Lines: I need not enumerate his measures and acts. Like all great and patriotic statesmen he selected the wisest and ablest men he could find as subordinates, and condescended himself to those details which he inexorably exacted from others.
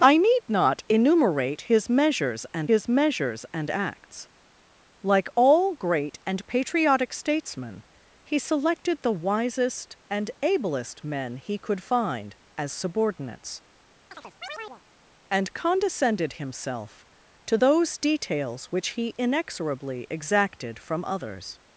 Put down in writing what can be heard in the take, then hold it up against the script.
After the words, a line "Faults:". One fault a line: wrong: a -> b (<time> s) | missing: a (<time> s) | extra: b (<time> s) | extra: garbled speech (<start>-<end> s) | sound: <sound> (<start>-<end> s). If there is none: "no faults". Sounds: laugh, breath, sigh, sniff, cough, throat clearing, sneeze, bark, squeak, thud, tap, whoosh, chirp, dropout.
I need not enumerate his measures and his measures and acts. Like all great and patriotic statesmen he selected the wisest and ablest men he could find as subordinates, and condescended himself to those details which he inexorably exacted from others.
Faults:
extra: his measures and (2.7 s)
sound: chirp (14.1-14.8 s)